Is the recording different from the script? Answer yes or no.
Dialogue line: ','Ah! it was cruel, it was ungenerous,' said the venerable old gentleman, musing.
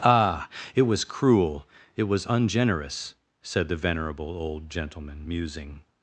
no